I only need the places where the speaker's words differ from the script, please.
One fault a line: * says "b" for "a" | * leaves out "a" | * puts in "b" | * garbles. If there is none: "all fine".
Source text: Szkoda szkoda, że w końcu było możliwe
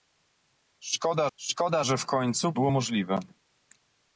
all fine